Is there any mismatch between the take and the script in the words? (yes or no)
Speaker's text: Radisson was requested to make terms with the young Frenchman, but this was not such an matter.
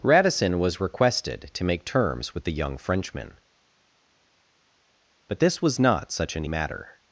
no